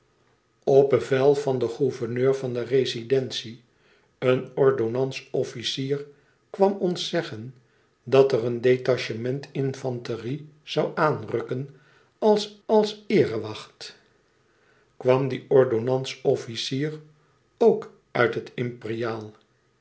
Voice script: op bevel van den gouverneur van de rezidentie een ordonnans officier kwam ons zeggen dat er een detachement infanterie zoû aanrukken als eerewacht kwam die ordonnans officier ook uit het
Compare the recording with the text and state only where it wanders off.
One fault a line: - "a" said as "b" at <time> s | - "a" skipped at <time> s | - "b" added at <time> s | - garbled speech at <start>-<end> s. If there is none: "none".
- "als" added at 12.7 s